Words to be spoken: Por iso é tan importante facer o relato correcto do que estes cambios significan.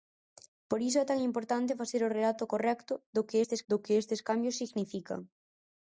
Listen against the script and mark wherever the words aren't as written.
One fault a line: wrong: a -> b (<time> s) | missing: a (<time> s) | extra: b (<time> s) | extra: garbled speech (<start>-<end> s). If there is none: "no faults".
extra: do que estes (3.7 s)